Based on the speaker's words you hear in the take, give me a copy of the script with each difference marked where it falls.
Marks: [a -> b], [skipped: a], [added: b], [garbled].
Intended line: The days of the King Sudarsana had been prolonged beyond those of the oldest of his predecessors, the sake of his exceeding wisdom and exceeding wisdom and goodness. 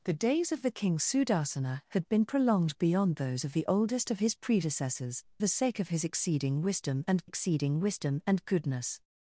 The days of the King Sudarsana had been prolonged beyond those of the oldest of his predecessors, the sake of his exceeding wisdom and exceeding wisdom and goodness.